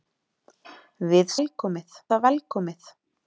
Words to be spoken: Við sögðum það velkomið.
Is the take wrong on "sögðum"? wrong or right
wrong